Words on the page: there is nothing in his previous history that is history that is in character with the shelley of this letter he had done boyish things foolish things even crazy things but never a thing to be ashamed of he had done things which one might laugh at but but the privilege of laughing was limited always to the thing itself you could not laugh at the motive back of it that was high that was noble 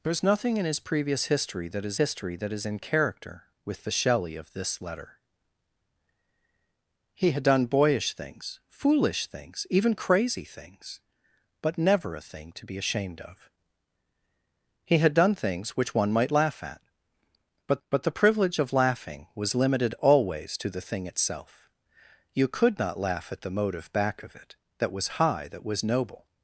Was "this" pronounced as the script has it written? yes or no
yes